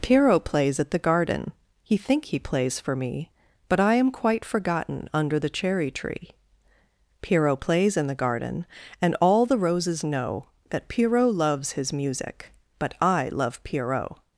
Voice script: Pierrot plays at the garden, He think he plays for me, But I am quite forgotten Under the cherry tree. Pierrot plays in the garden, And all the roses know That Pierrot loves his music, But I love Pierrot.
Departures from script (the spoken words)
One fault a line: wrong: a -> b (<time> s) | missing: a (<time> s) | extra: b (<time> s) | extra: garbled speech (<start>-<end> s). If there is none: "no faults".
no faults